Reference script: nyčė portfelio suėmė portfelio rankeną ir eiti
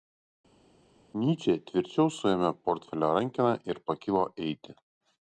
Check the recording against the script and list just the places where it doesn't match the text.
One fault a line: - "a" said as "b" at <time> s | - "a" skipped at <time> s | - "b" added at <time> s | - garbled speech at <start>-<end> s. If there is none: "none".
- "portfelio" said as "tvirčiau" at 1.7 s
- "pakilo" added at 3.9 s